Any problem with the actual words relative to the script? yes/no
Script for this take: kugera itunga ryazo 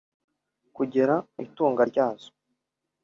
no